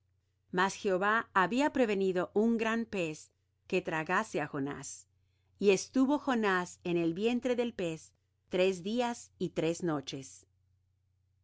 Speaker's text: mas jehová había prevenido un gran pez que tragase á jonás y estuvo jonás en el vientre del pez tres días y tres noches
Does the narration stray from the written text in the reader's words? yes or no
no